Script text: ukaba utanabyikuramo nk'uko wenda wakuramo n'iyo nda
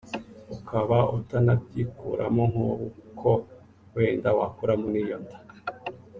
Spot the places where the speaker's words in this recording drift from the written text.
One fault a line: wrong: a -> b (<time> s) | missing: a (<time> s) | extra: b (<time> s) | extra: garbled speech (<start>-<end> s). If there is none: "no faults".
no faults